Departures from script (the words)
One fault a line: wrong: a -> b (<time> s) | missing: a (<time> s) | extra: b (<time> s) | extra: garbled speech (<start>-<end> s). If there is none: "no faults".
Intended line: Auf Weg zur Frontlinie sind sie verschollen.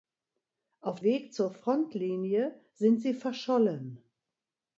no faults